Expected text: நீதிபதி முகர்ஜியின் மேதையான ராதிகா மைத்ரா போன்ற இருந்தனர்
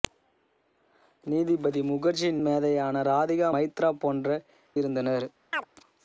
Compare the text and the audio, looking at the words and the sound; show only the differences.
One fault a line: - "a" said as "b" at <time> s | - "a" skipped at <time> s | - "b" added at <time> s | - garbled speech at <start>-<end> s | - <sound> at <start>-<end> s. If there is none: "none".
- chirp at 5.5-5.6 s